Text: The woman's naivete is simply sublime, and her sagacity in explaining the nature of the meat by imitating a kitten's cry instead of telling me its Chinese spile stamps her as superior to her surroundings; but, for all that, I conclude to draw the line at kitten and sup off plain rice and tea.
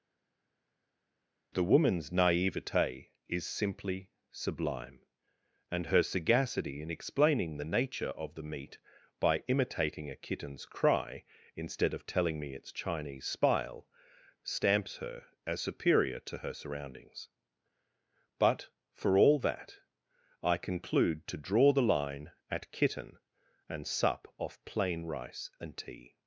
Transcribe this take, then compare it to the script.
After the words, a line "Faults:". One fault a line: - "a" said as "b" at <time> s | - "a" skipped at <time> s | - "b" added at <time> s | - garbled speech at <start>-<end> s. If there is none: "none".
The woman's naivete is simply sublime, and her sagacity in explaining the nature of the meat by imitating a kitten's cry instead of telling me its Chinese spile stamps her as superior to her surroundings; but, for all that, I conclude to draw the line at kitten and sup off plain rice and tea.
Faults:
none